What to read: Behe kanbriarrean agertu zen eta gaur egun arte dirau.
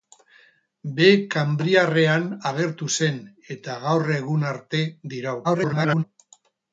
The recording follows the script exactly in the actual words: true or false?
false